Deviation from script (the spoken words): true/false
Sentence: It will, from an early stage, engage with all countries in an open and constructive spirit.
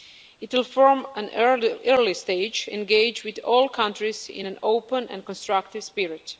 false